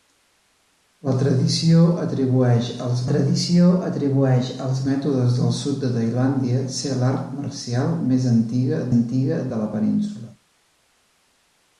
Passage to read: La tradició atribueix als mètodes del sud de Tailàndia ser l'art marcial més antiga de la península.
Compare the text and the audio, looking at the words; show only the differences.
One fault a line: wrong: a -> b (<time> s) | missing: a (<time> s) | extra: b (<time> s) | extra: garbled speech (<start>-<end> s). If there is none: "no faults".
extra: tradició atribueix als (3.1 s)
extra: antiga (9.0 s)